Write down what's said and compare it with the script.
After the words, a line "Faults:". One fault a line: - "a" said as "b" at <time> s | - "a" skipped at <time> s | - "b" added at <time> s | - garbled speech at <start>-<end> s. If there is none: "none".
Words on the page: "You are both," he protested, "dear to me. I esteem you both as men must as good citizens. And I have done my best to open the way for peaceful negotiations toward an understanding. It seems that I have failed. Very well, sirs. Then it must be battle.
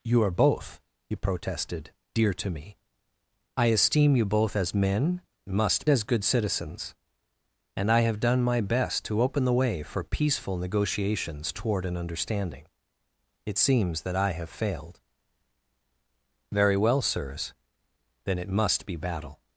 "You are both," he protested, "dear to me. I esteem you both as men must as good citizens. And I have done my best to open the way for peaceful negotiations toward an understanding. It seems that I have failed. Very well, sirs. Then it must be battle.
Faults:
none